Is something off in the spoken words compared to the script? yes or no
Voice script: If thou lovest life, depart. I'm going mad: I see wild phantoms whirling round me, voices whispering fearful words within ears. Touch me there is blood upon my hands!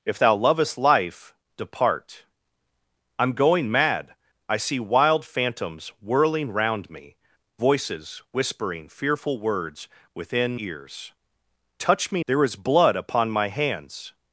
no